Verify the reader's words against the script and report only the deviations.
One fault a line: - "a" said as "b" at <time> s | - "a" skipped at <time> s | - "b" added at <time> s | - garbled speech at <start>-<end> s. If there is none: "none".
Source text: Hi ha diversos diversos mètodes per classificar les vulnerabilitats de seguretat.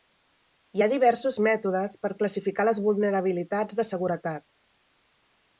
- "diversos" skipped at 1.4 s